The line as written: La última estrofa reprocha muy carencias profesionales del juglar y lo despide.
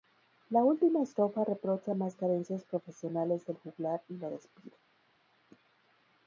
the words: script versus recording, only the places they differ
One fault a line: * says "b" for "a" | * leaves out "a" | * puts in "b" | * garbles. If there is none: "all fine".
* says "más" for "muy"